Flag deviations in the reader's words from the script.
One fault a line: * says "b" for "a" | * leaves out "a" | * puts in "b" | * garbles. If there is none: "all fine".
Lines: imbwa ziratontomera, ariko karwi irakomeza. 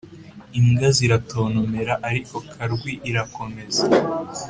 all fine